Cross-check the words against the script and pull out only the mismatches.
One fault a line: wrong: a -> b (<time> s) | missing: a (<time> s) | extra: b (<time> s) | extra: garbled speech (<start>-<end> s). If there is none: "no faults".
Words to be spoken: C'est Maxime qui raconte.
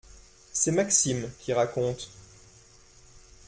no faults